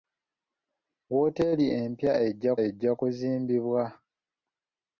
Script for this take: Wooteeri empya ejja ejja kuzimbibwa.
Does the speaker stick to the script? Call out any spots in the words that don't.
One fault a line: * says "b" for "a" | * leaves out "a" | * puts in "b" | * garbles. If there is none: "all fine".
all fine